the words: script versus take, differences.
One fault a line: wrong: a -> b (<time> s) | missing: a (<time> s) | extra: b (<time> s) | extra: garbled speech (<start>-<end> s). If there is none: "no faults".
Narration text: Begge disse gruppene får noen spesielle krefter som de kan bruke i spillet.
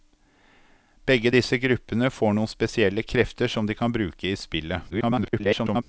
extra: garbled speech (4.9-5.8 s)